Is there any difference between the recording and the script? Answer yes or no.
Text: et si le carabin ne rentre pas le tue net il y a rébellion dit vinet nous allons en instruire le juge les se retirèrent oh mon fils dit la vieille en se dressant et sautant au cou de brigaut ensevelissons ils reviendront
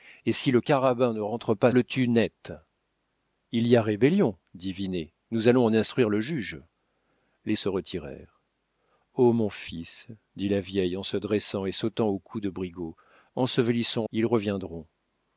no